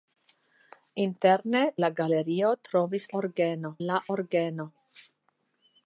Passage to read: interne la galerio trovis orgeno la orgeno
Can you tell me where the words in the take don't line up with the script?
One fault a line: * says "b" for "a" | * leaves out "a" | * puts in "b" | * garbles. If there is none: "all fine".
all fine